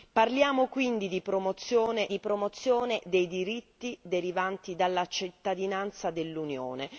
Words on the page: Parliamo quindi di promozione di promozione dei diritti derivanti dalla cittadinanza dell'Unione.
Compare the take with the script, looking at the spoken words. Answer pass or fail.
pass